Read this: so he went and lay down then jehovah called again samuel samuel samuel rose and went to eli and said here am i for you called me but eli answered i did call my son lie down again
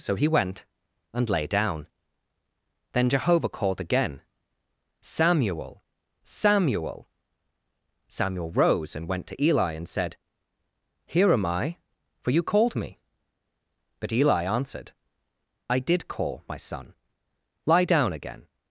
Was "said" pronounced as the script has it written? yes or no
yes